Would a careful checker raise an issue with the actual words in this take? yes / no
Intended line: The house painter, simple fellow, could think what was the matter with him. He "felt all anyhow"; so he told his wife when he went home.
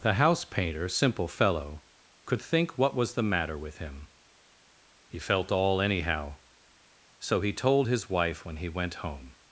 no